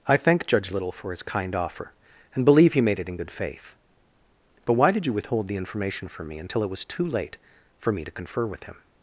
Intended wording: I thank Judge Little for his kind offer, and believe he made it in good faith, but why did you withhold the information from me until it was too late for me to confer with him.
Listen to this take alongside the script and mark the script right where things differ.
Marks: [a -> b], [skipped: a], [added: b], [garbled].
I thank Judge Little for his kind offer, and believe he made it in good faith, but why did you withhold the information from me until it was too late for me to confer with him.